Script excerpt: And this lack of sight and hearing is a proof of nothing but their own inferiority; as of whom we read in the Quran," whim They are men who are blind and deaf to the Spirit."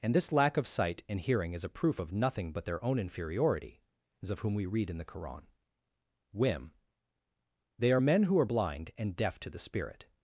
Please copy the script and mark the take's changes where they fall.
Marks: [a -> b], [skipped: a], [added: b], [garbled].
And this lack of sight and hearing is a proof of nothing but their own inferiority; as of whom we read in the Quran," whim They are men who are blind and deaf to the Spirit."